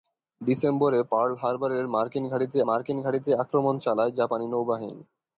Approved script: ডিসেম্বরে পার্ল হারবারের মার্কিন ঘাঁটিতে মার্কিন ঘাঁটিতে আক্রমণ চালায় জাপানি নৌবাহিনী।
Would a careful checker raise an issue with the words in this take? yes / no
no